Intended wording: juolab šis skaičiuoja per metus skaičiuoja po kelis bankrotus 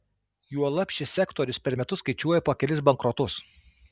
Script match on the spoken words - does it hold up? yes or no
no